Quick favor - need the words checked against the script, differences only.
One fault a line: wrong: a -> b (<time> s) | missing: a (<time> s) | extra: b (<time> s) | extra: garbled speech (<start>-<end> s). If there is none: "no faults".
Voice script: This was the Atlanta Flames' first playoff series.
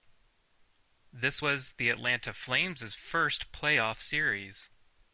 no faults